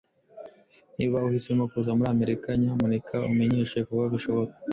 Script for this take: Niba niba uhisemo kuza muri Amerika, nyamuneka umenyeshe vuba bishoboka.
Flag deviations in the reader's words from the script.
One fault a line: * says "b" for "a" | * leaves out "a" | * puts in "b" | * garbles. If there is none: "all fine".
* leaves out "niba"